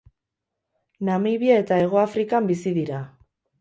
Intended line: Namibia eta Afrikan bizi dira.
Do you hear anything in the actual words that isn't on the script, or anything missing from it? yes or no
yes